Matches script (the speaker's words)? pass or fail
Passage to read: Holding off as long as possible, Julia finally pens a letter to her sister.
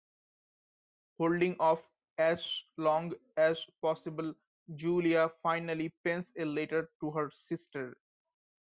pass